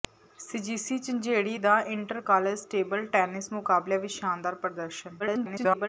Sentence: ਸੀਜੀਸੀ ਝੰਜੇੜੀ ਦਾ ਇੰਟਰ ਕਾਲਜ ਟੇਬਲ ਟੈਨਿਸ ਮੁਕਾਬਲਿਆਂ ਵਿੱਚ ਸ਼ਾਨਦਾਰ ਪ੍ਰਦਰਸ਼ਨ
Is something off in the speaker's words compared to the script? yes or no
yes